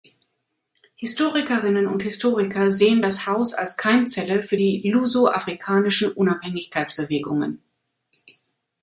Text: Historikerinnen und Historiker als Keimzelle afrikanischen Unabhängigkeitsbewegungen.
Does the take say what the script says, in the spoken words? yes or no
no